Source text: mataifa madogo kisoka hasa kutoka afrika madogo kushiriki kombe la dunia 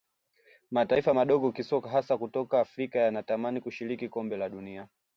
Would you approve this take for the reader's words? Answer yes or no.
no